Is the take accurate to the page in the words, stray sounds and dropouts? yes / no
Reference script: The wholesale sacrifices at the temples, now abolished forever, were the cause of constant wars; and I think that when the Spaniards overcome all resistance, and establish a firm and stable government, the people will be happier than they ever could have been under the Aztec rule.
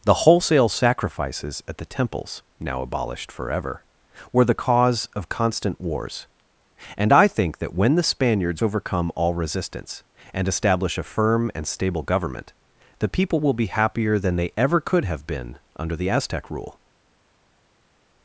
yes